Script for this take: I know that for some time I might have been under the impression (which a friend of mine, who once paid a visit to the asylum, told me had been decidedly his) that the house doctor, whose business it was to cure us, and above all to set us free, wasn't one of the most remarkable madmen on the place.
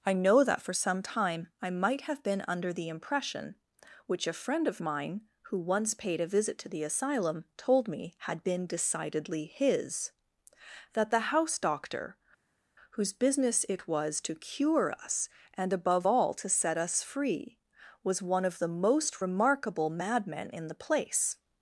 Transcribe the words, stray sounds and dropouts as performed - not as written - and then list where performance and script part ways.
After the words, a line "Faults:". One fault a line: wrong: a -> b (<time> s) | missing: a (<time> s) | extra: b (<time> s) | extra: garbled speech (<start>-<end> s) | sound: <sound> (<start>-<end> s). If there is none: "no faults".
I know that for some time I might have been under the impression (which a friend of mine, who once paid a visit to the asylum, told me had been decidedly his) that the house doctor, whose business it was to cure us, and above all to set us free, was one of the most remarkable madmen in the place.
Faults:
wrong: wasn't -> was (18.0 s)
wrong: on -> in (20.5 s)